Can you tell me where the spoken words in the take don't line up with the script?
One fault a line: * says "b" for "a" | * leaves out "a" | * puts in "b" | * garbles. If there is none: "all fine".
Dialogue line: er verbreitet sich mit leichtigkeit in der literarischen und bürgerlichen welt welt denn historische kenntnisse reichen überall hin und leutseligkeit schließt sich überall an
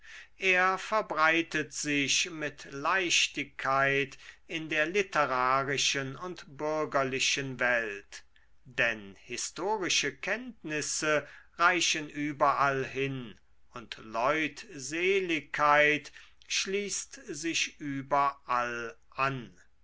* leaves out "welt"